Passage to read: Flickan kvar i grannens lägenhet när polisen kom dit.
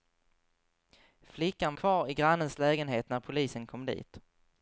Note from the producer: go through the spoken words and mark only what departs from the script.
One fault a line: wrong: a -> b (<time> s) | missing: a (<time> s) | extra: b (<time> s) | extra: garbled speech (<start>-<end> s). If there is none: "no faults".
no faults